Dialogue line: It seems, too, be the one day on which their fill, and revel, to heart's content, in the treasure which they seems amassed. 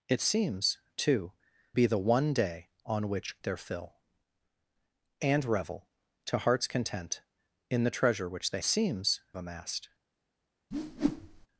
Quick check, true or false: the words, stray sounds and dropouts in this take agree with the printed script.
false